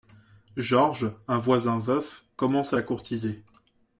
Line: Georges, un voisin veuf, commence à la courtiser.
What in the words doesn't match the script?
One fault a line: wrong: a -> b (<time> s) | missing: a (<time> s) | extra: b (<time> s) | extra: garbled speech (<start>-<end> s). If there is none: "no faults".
no faults